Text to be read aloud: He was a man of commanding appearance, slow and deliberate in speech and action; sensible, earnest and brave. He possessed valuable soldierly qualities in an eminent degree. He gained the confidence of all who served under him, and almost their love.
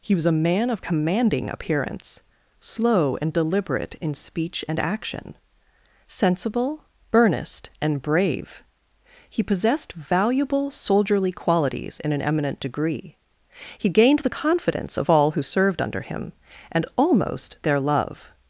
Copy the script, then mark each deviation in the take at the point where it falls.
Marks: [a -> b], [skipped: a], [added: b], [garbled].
He was a man of commanding appearance, slow and deliberate in speech and action; sensible, earnest and brave. He possessed valuable soldierly qualities in an eminent degree. He gained the confidence of all who served under him, and almost their love.